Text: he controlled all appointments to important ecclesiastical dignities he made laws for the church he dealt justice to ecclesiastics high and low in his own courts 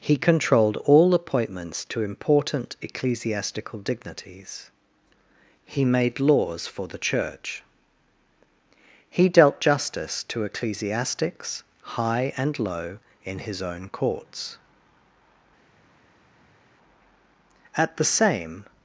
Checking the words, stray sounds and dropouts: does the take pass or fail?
fail